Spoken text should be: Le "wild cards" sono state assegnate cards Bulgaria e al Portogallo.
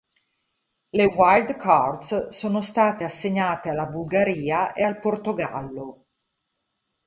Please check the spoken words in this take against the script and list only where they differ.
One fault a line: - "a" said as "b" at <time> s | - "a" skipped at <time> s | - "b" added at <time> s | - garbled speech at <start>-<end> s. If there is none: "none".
- "cards" said as "alla" at 3.7 s